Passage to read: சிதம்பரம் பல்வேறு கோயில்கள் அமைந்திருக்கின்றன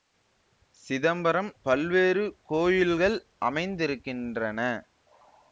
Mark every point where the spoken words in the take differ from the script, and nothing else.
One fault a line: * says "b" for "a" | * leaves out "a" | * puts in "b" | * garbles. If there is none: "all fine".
all fine